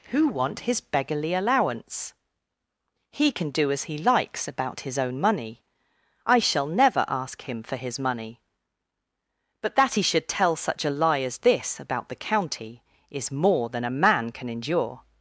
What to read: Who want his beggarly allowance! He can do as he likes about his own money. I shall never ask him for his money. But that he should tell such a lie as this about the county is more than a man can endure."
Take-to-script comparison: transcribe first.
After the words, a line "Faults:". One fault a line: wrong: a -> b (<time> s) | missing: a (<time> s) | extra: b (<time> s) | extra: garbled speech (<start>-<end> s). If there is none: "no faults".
Who want his beggarly allowance! He can do as he likes about his own money. I shall never ask him for his money. But that he should tell such a lie as this about the county is more than a man can endure."
Faults:
no faults